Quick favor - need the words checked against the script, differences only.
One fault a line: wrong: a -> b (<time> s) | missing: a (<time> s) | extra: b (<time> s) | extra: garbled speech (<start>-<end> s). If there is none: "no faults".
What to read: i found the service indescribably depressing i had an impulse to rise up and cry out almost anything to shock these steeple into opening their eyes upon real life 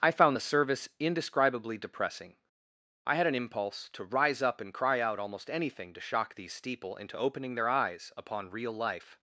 no faults